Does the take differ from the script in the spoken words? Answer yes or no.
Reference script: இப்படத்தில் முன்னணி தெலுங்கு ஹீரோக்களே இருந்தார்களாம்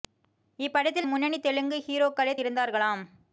no